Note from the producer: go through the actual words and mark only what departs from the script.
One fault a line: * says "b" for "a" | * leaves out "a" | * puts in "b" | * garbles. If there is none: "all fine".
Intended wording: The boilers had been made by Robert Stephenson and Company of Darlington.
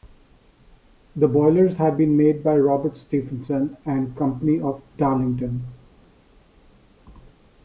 all fine